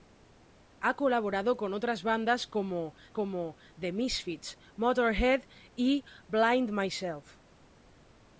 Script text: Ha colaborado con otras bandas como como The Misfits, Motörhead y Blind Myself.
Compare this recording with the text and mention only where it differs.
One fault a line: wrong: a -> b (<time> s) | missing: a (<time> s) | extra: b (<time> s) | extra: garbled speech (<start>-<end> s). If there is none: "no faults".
no faults